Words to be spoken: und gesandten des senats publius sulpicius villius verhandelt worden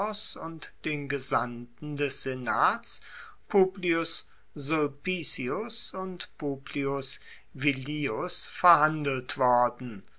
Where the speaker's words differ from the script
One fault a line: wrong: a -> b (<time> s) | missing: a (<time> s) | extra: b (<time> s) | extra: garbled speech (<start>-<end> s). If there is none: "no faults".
extra: den (0.8 s)
extra: und publius (5.9 s)